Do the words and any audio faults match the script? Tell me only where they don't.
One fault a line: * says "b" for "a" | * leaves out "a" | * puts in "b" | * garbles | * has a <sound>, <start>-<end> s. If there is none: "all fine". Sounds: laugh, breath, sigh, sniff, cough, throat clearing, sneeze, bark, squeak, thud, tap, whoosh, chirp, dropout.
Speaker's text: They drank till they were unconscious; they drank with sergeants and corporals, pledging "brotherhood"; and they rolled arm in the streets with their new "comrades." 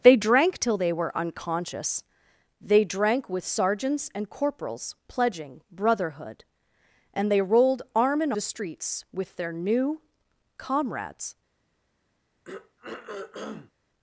* has a throat clearing, 12.4-13.7 s